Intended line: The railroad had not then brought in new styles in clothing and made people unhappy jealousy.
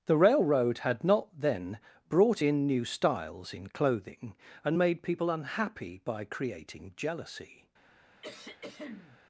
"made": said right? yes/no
yes